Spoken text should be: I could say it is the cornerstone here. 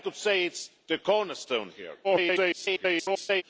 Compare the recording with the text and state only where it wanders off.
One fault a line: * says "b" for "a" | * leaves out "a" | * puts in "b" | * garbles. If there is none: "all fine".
* garbles